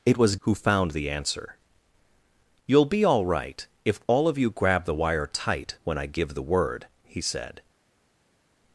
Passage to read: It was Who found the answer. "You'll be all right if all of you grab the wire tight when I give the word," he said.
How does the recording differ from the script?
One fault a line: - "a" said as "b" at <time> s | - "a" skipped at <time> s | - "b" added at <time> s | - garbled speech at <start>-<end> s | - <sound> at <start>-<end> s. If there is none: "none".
none